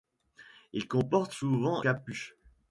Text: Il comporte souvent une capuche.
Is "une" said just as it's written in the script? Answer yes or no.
no